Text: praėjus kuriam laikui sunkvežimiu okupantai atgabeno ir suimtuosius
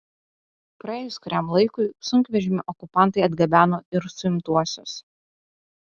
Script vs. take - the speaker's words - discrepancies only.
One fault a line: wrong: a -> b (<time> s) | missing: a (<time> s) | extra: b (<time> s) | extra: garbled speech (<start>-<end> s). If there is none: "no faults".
no faults